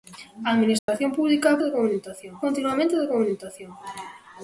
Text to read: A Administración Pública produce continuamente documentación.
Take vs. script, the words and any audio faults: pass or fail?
fail